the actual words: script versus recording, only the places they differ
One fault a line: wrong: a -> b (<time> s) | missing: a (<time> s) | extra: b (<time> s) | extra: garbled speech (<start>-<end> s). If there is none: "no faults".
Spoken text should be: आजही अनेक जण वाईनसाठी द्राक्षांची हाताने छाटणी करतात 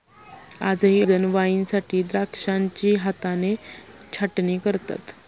missing: अनेक (1.0 s)